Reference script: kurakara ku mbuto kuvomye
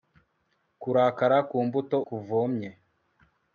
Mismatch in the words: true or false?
false